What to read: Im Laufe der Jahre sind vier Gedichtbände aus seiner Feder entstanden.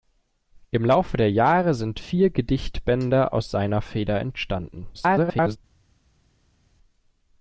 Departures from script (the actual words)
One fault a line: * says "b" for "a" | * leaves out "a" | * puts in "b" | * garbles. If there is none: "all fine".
* garbles